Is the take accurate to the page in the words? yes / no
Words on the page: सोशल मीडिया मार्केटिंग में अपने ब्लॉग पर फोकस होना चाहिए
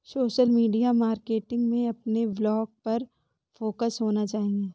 yes